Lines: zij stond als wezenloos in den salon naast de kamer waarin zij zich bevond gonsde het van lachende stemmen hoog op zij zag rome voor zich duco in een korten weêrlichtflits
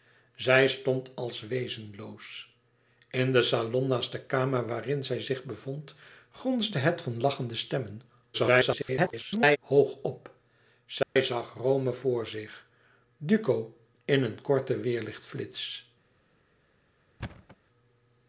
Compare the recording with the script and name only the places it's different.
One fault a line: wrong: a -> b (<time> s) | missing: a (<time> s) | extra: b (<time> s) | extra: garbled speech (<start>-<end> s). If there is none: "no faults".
extra: garbled speech (8.3-9.6 s)